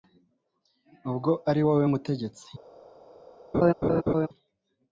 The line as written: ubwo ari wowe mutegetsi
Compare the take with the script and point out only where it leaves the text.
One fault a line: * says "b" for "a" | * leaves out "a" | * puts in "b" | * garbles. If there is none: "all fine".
all fine